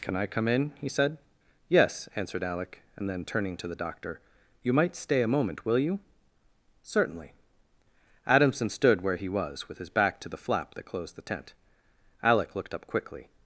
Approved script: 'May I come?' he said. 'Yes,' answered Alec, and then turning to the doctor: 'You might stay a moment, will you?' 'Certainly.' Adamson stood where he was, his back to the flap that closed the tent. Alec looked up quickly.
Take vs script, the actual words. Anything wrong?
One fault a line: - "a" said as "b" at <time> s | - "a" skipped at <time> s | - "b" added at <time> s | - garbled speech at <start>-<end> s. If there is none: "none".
- "May" said as "Can" at 0.0 s
- "in" added at 0.5 s
- "with" added at 9.7 s